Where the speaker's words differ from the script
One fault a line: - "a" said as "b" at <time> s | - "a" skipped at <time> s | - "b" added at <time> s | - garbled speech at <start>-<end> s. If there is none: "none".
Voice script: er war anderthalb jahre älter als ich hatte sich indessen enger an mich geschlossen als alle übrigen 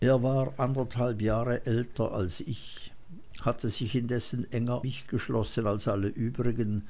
- "an" skipped at 4.8 s